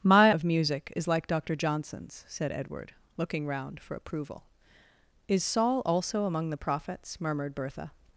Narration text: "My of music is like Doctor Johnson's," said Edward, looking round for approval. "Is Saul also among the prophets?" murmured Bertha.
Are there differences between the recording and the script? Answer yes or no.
no